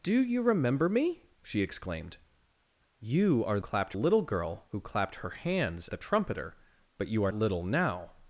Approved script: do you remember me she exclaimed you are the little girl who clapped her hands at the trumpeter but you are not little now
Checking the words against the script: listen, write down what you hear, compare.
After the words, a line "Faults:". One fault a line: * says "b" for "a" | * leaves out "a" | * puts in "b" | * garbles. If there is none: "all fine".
do you remember me she exclaimed you are clapped little girl who clapped her hands the trumpeter but you are little now
Faults:
* says "clapped" for "the"
* leaves out "at"
* leaves out "not"